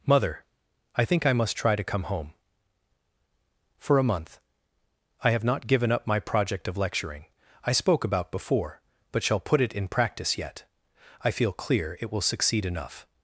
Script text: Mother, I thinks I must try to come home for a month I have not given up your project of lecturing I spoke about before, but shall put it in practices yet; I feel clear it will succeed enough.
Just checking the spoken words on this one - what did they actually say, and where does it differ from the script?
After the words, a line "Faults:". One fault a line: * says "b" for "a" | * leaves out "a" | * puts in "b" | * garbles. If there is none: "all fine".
Mother, I think I must try to come home for a month I have not given up my project of lecturing I spoke about before, but shall put it in practice yet; I feel clear it will succeed enough.
Faults:
* says "think" for "thinks"
* says "my" for "your"
* says "practice" for "practices"